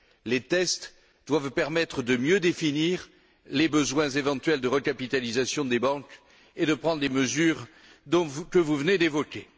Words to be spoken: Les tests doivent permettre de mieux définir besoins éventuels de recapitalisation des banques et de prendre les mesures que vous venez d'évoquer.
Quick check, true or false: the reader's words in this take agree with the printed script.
false